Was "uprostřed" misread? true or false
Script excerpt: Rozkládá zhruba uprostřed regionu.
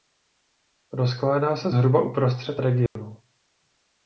false